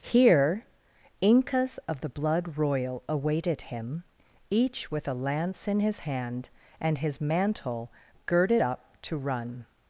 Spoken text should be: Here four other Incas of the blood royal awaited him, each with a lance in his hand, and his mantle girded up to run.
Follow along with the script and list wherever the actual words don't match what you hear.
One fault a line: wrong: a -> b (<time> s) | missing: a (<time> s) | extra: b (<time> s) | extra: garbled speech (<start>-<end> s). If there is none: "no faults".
missing: four other (0.7 s)